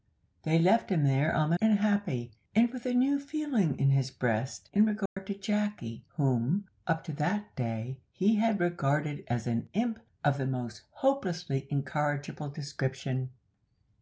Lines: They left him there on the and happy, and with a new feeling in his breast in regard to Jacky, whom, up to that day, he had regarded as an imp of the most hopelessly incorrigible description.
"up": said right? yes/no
yes